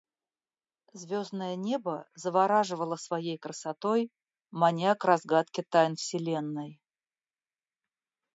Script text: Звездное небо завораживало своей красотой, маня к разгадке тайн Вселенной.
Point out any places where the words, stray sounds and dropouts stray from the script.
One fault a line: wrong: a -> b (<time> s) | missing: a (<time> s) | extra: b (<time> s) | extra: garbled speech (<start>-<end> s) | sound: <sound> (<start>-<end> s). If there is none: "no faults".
no faults